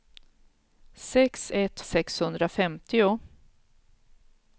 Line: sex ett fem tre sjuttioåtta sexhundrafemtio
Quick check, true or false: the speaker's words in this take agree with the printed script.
false